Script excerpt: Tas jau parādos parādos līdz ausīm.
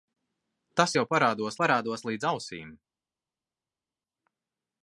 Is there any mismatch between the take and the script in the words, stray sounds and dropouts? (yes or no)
no